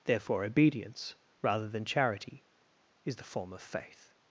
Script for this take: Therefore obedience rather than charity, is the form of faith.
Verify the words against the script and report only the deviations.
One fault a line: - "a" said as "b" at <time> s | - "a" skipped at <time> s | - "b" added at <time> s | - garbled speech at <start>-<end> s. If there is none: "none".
none